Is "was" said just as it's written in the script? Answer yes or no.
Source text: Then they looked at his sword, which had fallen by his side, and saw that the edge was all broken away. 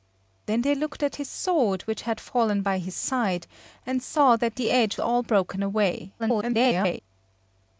no